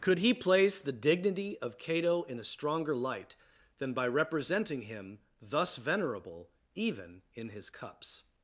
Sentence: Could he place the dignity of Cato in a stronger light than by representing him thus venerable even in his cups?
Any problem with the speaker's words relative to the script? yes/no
no